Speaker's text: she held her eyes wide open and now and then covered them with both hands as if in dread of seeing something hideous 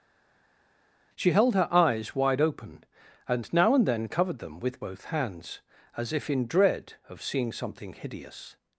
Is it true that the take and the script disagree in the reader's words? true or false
false